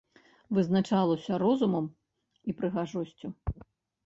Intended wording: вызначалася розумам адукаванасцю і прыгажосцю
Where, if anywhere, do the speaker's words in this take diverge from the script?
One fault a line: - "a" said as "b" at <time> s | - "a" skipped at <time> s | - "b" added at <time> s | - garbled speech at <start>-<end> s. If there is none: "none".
- "адукаванасцю" skipped at 1.9 s